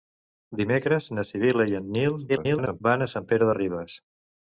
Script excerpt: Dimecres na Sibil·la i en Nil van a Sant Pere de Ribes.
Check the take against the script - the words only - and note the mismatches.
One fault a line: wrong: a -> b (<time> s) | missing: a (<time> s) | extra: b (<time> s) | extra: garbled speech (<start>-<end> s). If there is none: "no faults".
extra: garbled speech (2.3-2.8 s)